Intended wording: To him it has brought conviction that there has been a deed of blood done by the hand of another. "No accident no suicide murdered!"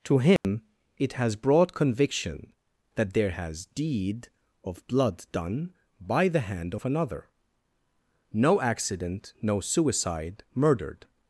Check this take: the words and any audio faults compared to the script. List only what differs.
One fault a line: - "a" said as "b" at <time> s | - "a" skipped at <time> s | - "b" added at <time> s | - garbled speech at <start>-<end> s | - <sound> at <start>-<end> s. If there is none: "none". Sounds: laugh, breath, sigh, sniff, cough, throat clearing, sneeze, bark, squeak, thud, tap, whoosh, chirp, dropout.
- dropout at 0.4-0.4 s
- "been a" skipped at 3.7 s